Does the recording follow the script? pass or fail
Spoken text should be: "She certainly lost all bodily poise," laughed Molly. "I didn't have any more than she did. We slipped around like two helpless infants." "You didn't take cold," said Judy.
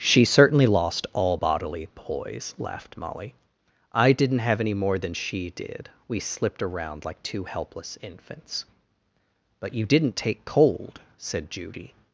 fail